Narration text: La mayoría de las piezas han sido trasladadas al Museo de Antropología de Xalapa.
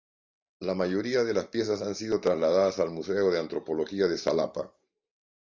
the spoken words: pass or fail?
pass